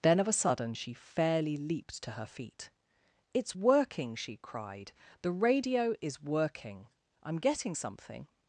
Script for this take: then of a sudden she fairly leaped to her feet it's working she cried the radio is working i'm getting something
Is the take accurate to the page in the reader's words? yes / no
yes